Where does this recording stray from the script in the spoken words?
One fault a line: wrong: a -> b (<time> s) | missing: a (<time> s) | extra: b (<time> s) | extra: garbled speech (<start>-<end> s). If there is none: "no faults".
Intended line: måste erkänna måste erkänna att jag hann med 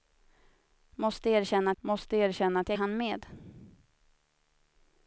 no faults